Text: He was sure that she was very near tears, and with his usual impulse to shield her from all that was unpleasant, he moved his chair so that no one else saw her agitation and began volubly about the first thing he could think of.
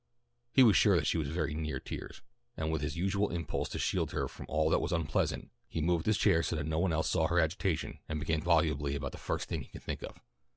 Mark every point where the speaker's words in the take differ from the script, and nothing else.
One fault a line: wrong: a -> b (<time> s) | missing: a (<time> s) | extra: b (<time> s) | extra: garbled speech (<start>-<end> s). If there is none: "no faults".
no faults